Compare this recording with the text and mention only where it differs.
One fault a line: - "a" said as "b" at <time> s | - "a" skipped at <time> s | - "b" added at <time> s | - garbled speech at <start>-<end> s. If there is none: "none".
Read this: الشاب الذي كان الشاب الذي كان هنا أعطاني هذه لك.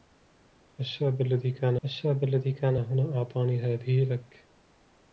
none